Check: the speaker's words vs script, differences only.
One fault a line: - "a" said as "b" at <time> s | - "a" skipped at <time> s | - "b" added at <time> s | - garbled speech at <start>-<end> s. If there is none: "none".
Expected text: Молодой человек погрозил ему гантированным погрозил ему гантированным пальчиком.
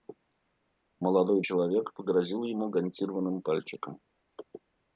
- "погрозил ему гантированным" skipped at 3.4 s